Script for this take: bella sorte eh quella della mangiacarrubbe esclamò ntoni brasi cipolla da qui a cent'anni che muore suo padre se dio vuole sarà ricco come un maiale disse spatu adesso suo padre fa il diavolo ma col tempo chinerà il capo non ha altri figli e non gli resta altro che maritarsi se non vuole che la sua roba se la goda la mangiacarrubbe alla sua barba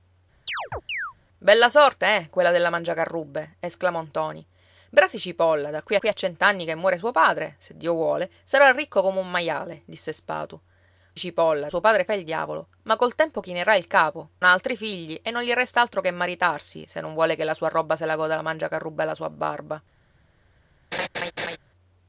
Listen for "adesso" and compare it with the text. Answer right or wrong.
wrong